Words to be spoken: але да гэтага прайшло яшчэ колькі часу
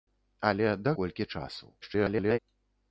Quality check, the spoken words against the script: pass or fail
fail